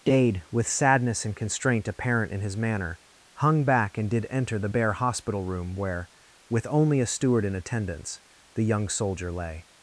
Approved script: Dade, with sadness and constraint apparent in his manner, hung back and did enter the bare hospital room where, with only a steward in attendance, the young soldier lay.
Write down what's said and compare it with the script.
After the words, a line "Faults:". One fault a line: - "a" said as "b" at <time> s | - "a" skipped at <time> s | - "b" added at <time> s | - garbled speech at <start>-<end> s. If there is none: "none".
Dade, with sadness and constraint apparent in his manner, hung back and did enter the bare hospital room where, with only a steward in attendance, the young soldier lay.
Faults:
none